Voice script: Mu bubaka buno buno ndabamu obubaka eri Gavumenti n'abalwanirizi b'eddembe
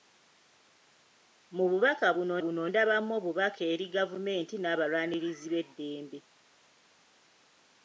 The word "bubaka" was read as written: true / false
true